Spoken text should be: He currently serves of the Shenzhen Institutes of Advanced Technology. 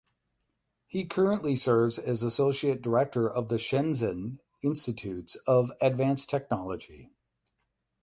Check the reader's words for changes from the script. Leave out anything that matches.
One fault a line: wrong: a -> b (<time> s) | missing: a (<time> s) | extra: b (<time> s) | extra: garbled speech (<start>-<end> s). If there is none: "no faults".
extra: as Associate Director (2.0 s)